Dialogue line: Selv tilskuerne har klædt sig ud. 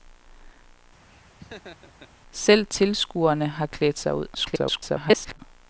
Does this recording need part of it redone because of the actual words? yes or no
yes